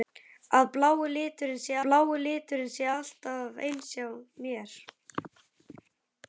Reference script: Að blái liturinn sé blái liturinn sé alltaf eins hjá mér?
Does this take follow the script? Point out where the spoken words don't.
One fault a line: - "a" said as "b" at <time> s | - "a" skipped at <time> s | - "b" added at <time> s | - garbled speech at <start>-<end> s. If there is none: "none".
none